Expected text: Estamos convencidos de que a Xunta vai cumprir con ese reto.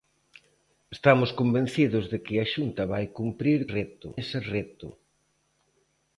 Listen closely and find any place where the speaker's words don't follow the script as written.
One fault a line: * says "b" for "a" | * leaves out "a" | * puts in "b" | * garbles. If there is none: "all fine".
* says "reto" for "con"